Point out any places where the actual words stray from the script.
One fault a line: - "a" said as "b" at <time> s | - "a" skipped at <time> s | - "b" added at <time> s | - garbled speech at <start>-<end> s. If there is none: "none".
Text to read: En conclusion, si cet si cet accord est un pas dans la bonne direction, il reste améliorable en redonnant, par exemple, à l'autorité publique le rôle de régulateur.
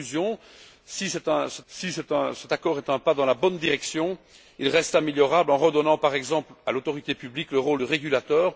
none